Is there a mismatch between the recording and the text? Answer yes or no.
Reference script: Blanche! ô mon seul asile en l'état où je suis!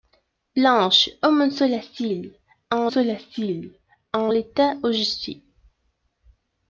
yes